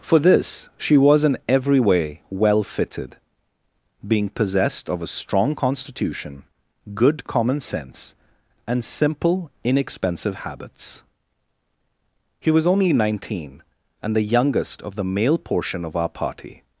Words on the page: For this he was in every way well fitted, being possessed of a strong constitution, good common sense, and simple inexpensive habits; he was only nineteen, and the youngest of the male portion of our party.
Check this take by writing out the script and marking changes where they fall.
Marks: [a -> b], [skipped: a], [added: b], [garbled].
For this [he -> she] was in every way well fitted, being possessed of a strong constitution, good common sense, and simple inexpensive habits; he was only nineteen, and the youngest of the male portion of our party.